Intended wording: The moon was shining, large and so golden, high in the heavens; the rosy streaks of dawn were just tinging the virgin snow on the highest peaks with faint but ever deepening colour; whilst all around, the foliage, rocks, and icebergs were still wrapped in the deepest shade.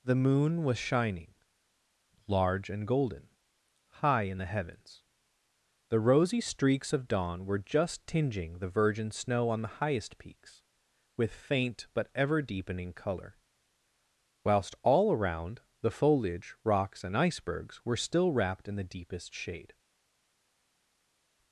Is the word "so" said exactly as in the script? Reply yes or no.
no